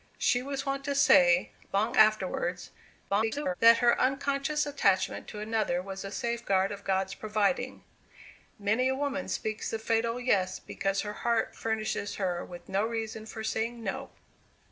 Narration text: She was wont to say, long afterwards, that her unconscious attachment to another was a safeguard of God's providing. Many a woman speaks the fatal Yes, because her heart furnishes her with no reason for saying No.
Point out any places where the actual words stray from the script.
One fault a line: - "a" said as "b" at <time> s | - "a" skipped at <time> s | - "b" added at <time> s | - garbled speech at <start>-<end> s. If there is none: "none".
- garbled speech at 3.1-3.5 s